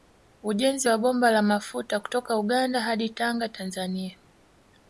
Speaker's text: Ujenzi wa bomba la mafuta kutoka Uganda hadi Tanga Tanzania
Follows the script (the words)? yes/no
yes